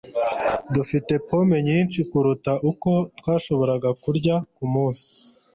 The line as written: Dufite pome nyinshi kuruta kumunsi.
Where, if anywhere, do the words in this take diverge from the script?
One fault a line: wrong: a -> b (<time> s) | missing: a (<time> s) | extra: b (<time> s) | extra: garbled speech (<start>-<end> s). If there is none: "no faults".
extra: uko twashoboraga kurya (2.7 s)